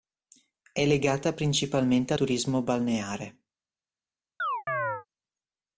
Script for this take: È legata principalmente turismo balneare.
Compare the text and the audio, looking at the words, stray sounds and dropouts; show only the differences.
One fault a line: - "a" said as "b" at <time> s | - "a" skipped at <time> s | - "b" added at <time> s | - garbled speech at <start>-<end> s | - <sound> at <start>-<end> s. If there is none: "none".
- chirp at 4.4-5.1 s